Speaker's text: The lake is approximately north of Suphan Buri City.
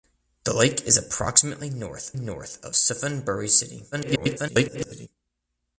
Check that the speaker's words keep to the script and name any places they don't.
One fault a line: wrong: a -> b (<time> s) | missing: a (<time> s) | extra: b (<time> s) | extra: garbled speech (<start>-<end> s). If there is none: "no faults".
extra: north (2.1 s)
extra: garbled speech (3.9-5.1 s)